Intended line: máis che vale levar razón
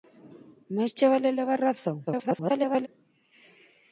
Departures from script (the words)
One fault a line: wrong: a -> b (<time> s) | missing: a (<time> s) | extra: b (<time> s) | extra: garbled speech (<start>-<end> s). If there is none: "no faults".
extra: garbled speech (2.1-2.9 s)